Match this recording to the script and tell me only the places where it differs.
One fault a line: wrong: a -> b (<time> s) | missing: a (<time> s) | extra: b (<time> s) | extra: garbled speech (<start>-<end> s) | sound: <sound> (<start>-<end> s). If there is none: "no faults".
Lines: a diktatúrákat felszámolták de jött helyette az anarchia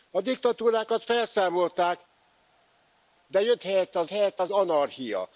extra: helyette az (4.1 s)